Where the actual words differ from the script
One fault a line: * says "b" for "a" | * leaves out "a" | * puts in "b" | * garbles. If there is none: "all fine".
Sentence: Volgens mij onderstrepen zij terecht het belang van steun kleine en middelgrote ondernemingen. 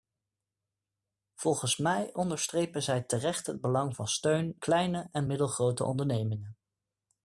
all fine